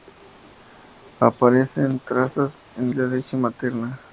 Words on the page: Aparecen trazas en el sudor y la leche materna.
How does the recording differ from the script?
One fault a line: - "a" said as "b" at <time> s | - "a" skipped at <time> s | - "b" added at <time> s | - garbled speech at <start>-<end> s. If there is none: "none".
- "el sudor" skipped at 2.9 s